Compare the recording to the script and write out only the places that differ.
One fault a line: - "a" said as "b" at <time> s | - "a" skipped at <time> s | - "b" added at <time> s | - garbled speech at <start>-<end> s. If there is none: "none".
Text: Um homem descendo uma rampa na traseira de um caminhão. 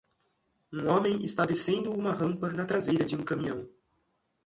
- "está" added at 1.2 s